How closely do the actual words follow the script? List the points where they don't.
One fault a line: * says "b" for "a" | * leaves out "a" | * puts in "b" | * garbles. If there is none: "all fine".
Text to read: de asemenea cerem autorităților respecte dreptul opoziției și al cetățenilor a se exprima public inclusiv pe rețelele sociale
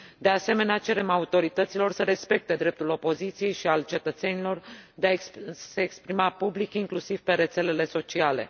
* puts in "să"
* puts in "de"